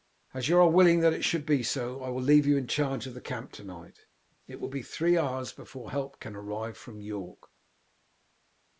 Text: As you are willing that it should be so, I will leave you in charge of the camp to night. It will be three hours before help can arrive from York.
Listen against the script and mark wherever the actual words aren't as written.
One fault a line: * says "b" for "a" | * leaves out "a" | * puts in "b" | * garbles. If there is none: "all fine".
all fine